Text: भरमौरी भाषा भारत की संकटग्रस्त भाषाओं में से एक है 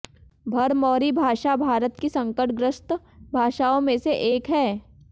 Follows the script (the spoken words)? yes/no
yes